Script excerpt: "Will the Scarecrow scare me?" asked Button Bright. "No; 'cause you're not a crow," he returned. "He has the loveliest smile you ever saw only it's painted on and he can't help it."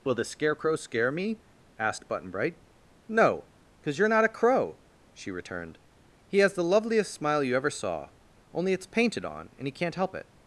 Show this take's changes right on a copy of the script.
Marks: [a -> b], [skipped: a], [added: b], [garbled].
"Will the Scarecrow scare me?" asked Button Bright. "No; 'cause you're not a crow," [he -> she] returned. "He has the loveliest smile you ever saw only it's painted on and he can't help it."